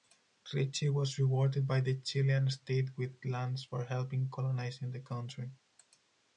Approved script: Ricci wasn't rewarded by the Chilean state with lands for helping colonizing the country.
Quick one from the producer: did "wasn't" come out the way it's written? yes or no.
no